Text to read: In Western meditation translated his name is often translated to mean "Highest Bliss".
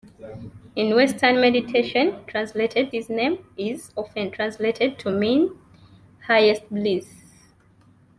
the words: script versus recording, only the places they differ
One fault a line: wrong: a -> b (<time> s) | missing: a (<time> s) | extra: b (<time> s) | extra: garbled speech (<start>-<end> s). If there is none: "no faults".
no faults